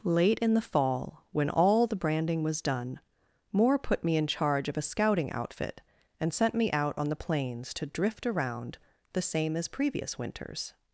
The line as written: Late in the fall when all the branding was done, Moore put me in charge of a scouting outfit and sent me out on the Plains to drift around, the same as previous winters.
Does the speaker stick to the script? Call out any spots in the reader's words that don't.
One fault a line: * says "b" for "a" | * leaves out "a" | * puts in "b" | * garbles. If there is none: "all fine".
all fine